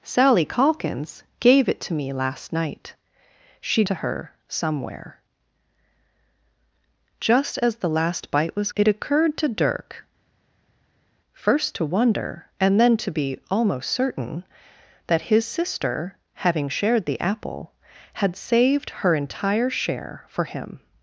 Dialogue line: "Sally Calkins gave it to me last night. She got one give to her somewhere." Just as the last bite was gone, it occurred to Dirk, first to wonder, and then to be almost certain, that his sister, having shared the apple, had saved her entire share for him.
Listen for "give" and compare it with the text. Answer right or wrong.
wrong